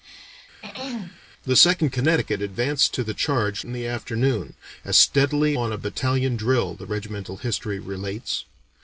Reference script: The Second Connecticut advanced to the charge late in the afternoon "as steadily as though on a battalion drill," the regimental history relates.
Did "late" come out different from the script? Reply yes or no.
yes